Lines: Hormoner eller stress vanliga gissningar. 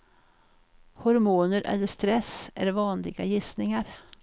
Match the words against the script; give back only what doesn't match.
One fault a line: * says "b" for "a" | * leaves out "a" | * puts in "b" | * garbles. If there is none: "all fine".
* puts in "är"